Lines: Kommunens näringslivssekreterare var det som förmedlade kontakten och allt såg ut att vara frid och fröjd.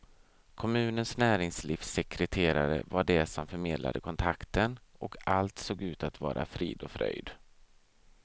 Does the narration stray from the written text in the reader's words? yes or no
no